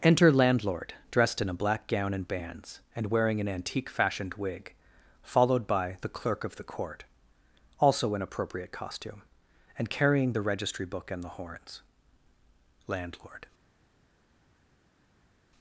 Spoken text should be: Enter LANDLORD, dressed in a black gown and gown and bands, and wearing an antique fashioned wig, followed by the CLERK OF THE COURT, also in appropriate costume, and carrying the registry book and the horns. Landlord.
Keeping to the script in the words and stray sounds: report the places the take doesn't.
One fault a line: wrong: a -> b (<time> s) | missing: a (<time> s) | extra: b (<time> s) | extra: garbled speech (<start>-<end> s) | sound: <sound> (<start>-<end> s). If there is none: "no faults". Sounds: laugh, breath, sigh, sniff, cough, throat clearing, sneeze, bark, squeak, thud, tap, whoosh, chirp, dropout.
missing: gown and (2.3 s)